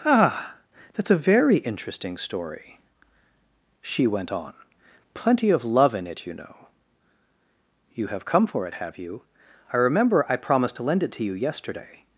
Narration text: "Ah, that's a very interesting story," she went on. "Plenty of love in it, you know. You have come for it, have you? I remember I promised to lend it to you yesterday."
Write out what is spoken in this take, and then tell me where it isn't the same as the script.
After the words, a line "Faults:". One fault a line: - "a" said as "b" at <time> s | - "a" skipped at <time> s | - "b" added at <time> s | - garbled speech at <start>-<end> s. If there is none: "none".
"Ah, that's a very interesting story," she went on. "Plenty of love in it, you know. You have come for it, have you? I remember I promised to lend it to you yesterday."
Faults:
none